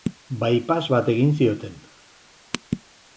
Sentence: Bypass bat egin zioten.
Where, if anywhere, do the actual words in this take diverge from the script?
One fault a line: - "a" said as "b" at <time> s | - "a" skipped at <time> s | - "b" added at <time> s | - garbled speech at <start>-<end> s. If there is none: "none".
none